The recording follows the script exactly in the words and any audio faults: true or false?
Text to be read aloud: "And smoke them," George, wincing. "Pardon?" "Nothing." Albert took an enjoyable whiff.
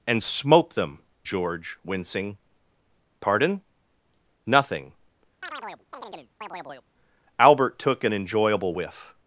false